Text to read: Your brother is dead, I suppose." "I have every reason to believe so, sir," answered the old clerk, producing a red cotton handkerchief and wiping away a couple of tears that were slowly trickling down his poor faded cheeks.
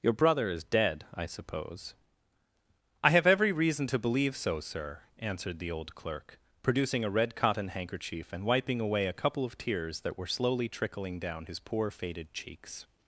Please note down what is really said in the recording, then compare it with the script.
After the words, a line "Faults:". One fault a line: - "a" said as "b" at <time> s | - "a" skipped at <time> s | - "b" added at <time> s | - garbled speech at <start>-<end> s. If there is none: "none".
Your brother is dead, I suppose." "I have every reason to believe so, sir," answered the old clerk, producing a red cotton handkerchief and wiping away a couple of tears that were slowly trickling down his poor faded cheeks.
Faults:
none